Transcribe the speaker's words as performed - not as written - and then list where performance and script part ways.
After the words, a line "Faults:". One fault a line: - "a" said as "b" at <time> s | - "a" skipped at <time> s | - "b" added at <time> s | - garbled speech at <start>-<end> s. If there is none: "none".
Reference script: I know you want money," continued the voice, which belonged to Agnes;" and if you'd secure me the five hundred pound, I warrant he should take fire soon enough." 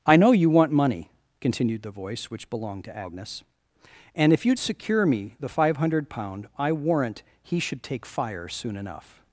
I know you want money," continued the voice, which belonged to Agnes;" and if you'd secure me the five hundred pound, I warrant he should take fire soon enough."
Faults:
none